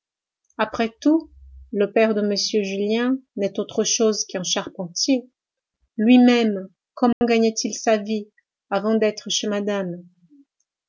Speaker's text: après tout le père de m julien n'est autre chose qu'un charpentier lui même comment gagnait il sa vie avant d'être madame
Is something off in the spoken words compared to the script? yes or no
yes